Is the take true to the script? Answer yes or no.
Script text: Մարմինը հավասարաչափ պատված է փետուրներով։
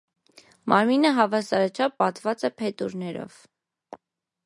yes